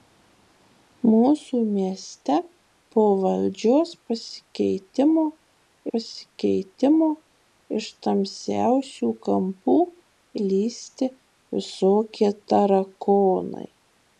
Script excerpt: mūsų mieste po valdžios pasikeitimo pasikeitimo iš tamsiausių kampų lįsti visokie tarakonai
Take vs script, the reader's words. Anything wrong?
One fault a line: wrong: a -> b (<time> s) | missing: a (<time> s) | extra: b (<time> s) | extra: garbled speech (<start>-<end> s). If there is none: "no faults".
no faults